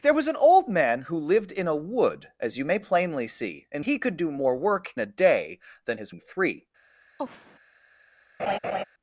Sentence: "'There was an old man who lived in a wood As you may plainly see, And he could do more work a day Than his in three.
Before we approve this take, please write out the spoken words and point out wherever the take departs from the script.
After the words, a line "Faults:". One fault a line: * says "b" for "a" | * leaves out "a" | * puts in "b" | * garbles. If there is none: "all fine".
"'There was an old man who lived in a wood As you may plainly see, And he could do more work a day Than his in three.
Faults:
all fine